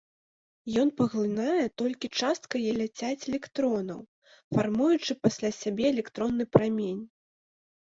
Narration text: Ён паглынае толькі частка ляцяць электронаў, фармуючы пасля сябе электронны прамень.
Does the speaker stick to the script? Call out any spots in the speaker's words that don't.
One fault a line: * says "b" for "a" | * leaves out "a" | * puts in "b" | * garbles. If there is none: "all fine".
all fine